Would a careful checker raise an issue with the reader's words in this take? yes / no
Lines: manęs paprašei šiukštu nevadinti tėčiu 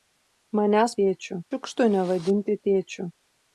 yes